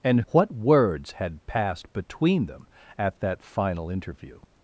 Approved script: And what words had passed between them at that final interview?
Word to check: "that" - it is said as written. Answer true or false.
true